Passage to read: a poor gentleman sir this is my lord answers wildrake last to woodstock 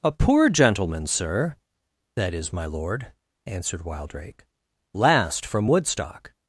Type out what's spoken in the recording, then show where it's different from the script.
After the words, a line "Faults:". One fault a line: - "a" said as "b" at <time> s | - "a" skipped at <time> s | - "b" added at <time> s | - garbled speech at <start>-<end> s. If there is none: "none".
a poor gentleman sir that is my lord answered wildrake last from woodstock
Faults:
- "this" said as "that" at 2.1 s
- "answers" said as "answered" at 3.5 s
- "to" said as "from" at 5.5 s